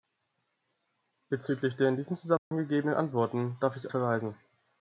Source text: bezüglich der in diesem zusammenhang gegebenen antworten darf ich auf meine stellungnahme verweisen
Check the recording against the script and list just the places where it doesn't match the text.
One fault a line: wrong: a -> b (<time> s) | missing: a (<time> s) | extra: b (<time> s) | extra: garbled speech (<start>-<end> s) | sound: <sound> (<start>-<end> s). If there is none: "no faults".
sound: dropout (2.4-2.5 s)
missing: auf meine stellungnahme (3.9 s)